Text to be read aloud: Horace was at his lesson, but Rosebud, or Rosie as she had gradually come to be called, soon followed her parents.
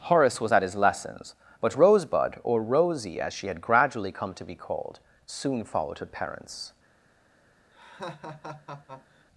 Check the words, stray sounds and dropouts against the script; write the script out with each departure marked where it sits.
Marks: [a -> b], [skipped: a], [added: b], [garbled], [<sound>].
Horace was at his [lesson, -> lessons] but Rosebud, or Rosie as she had gradually come to be called, soon followed her parents. [laugh]